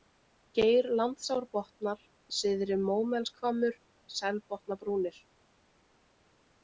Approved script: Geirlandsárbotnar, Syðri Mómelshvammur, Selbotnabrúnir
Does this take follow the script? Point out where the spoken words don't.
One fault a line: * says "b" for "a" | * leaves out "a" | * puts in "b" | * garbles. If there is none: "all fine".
all fine